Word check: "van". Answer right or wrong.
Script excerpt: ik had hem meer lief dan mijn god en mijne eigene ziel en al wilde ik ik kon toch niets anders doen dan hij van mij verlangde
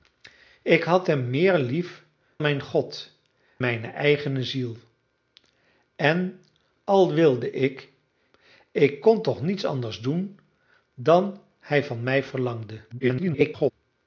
right